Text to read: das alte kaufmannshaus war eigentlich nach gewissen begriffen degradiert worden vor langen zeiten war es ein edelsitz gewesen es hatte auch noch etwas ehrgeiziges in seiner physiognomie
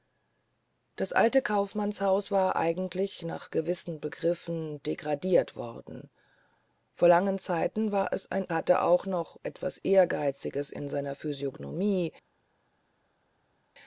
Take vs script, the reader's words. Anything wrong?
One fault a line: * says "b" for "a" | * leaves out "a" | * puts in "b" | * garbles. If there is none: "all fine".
* leaves out "edelsitz gewesen es"